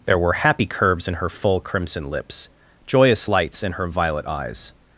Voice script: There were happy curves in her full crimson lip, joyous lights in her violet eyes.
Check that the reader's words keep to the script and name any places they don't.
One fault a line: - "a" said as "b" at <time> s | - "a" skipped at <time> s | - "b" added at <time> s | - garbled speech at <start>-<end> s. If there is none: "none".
- "lip" said as "lips" at 2.1 s